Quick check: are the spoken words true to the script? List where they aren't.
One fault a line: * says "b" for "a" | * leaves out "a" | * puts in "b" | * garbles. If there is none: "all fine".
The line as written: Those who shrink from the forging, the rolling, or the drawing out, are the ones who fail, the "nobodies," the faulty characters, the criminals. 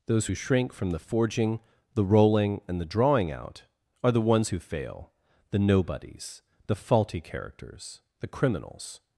* says "and" for "or"